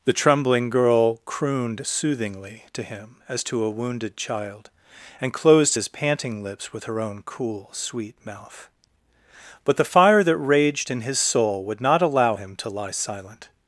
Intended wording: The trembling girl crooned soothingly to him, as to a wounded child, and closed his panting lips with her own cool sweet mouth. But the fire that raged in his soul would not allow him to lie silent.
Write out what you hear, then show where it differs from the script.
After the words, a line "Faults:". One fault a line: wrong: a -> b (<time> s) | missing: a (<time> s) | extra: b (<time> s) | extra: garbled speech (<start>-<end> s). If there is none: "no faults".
The trembling girl crooned soothingly to him, as to a wounded child, and closed his panting lips with her own cool sweet mouth. But the fire that raged in his soul would not allow him to lie silent.
Faults:
no faults